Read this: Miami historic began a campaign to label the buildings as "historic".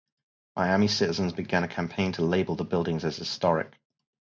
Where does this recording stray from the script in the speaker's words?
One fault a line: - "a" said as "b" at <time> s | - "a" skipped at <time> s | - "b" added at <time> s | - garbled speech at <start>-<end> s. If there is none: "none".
- "historic" said as "citizens" at 0.9 s